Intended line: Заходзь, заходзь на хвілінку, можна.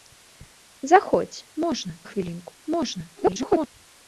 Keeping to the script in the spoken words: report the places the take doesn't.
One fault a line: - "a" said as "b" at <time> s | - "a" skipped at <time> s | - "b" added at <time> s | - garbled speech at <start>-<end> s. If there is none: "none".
- "заходзь" said as "можна" at 1.6 s
- garbled speech at 3.2-3.7 s